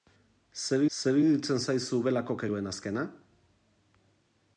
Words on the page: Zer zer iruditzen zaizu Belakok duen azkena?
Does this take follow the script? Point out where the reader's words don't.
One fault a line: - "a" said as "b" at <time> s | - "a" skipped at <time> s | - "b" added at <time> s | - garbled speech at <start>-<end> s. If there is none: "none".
none